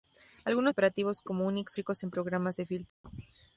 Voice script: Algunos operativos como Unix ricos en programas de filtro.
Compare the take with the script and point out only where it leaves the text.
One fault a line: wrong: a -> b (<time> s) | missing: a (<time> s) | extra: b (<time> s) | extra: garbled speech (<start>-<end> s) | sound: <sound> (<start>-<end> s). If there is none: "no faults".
sound: dropout (2.9-3.0 s)